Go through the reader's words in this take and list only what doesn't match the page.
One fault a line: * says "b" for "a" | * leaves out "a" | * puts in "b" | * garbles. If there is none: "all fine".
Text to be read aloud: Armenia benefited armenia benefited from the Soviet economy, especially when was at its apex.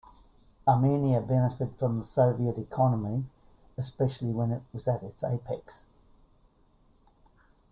* leaves out "armenia benefited"
* puts in "it"